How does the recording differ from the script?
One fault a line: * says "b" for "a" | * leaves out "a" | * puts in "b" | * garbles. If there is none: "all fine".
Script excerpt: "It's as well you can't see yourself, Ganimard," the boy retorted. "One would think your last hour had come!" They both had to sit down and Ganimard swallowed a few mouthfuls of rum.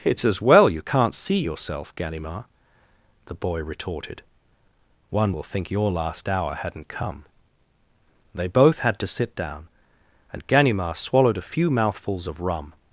* says "will" for "would"
* says "hadn't" for "had"